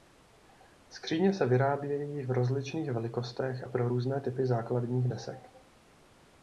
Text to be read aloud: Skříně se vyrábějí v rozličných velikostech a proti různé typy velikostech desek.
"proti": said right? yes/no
no